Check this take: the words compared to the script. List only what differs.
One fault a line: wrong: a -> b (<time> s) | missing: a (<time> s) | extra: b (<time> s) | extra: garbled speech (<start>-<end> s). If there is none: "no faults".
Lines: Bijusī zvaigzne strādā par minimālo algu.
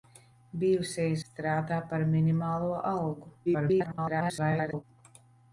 missing: zvaigzne (1.1 s)
extra: garbled speech (3.5-4.8 s)